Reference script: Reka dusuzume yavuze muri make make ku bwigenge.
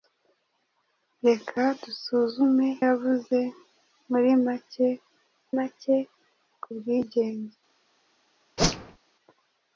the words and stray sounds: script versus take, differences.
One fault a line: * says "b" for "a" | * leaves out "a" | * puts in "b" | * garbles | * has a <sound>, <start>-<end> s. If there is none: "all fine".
* has a whoosh, 8.6-9.0 s